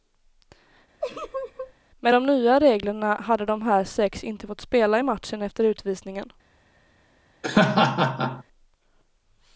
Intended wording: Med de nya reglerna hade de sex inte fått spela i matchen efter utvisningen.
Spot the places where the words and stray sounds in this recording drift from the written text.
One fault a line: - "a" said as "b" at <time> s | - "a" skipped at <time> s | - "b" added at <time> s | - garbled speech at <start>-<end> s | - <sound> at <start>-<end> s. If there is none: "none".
- laugh at 1.0-1.7 s
- "här" added at 3.6 s
- laugh at 7.4-8.4 s